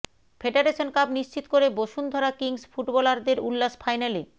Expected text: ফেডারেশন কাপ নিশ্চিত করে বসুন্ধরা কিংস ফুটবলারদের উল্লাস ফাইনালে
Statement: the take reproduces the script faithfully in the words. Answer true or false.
true